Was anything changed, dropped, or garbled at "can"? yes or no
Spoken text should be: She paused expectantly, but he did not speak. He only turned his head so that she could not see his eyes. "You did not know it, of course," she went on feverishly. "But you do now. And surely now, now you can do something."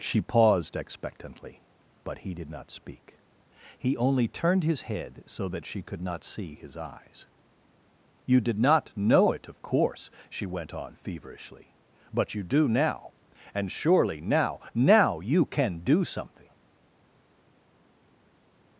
no